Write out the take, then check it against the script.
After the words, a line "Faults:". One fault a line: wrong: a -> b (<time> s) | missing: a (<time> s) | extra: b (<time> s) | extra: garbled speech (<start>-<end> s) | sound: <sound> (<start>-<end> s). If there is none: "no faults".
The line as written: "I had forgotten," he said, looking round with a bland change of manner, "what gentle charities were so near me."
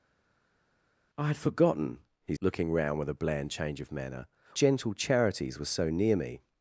"I had forgotten," he looking round with a bland change of manner, "gentle charities were so near me."
Faults:
missing: said (2.4 s)
missing: what (4.3 s)